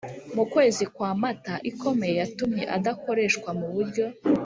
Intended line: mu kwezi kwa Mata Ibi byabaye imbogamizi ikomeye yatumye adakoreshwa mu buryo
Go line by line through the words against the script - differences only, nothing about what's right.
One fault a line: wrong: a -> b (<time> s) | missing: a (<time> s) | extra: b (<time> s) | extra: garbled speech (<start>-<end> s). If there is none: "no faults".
missing: Ibi byabaye imbogamizi (1.5 s)